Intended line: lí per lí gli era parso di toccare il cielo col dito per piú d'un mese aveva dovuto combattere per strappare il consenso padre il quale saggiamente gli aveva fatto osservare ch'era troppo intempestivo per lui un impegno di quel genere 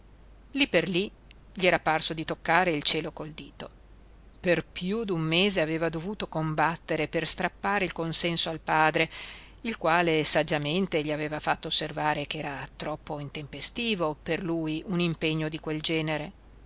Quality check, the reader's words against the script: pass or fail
fail